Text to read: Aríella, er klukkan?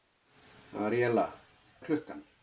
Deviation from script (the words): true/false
false